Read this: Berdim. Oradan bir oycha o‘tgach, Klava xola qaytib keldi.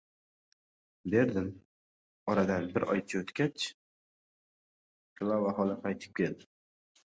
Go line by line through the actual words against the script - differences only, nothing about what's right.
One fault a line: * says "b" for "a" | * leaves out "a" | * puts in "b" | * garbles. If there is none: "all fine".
all fine